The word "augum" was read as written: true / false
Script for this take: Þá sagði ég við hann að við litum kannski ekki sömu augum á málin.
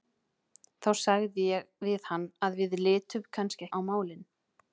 false